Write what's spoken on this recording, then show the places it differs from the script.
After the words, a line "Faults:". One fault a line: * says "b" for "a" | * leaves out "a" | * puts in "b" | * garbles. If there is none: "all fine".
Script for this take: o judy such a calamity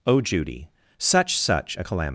o judy such such a calamity
Faults:
* puts in "such"